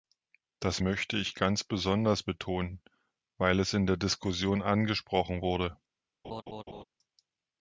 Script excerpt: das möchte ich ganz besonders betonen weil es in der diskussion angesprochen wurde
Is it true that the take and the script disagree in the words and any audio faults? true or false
true